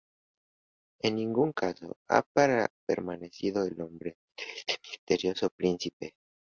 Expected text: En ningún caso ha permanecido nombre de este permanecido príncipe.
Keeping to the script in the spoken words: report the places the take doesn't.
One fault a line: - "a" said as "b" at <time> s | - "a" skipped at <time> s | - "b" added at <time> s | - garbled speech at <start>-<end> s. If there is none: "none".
- "el" added at 3.6 s
- "permanecido" said as "misterioso" at 4.9 s